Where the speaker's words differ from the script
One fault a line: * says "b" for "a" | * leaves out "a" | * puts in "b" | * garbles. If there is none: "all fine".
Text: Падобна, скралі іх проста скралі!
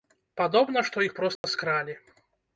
* says "што" for "скралі"